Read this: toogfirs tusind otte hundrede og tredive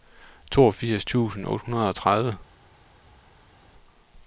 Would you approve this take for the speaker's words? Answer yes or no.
yes